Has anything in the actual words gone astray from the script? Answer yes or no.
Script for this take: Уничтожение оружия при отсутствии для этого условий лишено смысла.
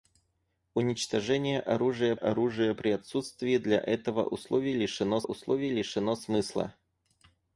yes